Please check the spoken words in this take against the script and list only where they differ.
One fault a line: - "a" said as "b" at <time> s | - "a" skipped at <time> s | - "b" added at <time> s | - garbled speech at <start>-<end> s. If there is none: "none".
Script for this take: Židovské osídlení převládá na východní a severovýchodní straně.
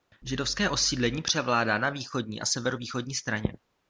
none